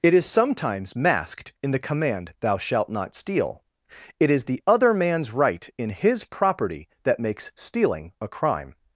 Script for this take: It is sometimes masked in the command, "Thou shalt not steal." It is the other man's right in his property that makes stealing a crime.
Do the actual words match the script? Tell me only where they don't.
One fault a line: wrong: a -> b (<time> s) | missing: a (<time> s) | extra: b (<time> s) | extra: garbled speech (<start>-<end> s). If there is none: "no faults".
no faults